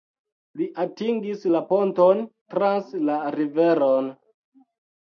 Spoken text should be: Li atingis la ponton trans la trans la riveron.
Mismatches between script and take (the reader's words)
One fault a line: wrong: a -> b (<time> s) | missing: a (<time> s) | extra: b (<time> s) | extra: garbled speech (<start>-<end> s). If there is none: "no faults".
missing: trans la (3.2 s)